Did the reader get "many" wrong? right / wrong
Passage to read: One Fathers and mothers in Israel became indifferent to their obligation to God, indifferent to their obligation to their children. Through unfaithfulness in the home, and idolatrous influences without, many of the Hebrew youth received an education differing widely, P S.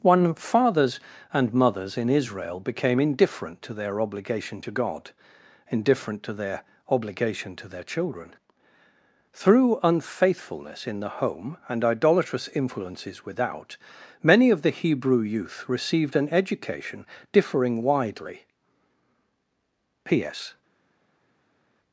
right